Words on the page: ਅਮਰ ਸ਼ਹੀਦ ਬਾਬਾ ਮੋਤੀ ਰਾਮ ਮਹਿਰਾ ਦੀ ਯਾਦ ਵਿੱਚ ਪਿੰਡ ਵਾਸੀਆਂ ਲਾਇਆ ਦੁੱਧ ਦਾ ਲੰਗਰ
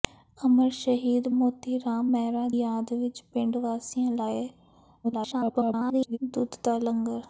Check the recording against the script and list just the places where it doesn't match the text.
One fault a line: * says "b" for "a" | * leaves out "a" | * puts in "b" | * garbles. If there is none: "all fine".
* leaves out "ਬਾਬਾ"
* leaves out "ਦੀ"
* garbles